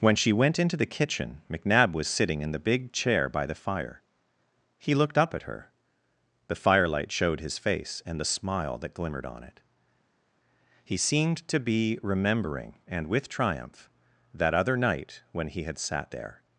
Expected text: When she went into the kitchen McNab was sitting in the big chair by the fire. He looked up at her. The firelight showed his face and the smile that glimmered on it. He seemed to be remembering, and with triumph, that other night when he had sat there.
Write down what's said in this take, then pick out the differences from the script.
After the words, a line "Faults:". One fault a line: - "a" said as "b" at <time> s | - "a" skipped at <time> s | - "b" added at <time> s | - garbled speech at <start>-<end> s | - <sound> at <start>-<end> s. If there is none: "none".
When she went into the kitchen McNab was sitting in the big chair by the fire. He looked up at her. The firelight showed his face and the smile that glimmered on it. He seemed to be remembering, and with triumph, that other night when he had sat there.
Faults:
none